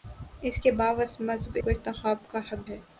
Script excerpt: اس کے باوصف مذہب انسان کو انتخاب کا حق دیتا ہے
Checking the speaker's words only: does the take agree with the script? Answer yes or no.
no